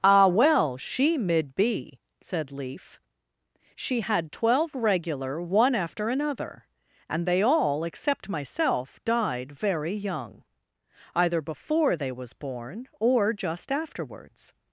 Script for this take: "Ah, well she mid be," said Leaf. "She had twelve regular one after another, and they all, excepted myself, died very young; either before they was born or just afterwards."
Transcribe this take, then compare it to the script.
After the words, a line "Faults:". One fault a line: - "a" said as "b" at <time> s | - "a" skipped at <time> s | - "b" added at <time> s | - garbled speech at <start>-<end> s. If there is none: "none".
"Ah, well she mid be," said Leaf. "She had twelve regular one after another, and they all, except myself, died very young; either before they was born or just afterwards."
Faults:
- "excepted" said as "except" at 7.8 s